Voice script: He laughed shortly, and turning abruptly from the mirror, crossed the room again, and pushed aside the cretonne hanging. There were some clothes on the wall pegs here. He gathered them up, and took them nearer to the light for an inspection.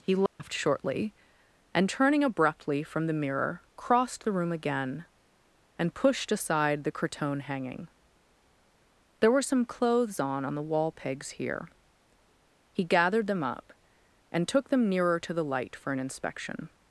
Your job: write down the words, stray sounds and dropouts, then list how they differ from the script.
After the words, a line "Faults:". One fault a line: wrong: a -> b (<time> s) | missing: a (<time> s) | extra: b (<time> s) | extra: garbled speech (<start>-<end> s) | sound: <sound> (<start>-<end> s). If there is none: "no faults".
He laughed shortly, and turning abruptly from the mirror, crossed the room again, and pushed aside the cretonne hanging. There were some clothes on on the wall pegs here. He gathered them up, and took them nearer to the light for an inspection.
Faults:
sound: dropout (0.3-0.4 s)
extra: on (10.4 s)